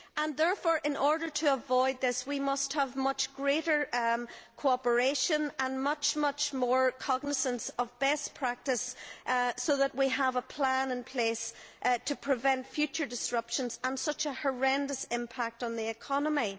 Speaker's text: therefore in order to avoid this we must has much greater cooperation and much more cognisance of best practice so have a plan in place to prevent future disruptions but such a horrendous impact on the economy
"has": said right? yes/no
no